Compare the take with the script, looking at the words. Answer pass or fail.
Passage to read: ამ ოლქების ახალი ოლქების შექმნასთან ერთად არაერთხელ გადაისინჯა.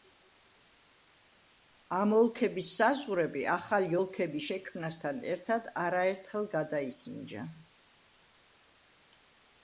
fail